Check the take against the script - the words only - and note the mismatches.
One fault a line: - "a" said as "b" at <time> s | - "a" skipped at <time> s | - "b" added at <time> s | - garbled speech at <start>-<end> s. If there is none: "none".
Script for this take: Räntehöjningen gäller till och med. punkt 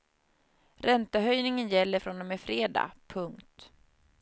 - "till" said as "från" at 2.0 s
- "fredag" added at 2.4 s